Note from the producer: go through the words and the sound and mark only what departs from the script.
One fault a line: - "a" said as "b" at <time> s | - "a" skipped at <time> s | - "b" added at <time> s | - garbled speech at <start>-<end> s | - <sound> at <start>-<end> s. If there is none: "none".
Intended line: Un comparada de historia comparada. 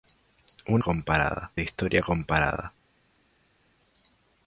none